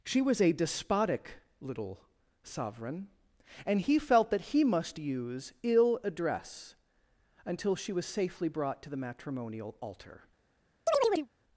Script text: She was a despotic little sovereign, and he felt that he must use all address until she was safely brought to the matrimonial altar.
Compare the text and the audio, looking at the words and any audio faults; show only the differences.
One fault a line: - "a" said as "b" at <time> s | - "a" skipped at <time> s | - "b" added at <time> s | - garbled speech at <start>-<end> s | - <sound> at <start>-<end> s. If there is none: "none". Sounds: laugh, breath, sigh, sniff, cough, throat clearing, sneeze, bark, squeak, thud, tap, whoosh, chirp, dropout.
- "all" said as "ill" at 5.6 s
- chirp at 10.9-11.3 s